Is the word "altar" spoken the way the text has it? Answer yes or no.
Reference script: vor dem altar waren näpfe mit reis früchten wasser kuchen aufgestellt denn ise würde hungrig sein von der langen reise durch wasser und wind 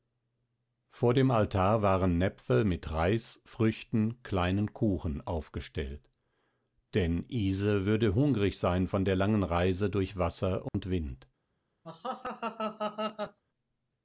yes